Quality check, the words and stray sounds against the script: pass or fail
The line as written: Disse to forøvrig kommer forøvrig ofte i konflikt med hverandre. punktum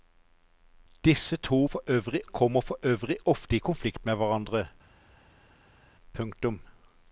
pass